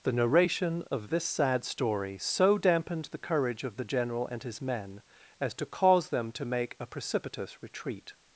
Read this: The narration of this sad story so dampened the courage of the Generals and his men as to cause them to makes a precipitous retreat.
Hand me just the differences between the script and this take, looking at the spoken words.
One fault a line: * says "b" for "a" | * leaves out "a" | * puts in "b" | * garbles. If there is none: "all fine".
* says "General" for "Generals"
* says "make" for "makes"